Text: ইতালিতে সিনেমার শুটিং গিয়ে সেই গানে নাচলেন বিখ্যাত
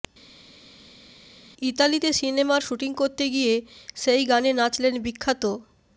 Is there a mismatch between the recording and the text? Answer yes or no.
yes